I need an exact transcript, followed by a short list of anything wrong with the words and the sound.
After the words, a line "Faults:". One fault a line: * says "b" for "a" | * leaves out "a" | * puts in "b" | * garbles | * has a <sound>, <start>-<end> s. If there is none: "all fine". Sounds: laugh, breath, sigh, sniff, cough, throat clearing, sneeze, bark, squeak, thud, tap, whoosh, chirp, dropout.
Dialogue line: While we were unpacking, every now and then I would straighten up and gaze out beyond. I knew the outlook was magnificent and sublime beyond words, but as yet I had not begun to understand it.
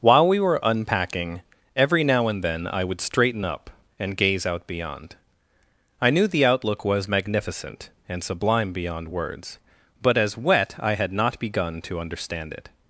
While we were unpacking, every now and then I would straighten up and gaze out beyond. I knew the outlook was magnificent and sublime beyond words, but as wet I had not begun to understand it.
Faults:
* says "wet" for "yet"